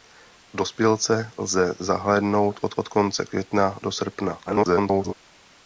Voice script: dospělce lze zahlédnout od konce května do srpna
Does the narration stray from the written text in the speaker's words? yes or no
yes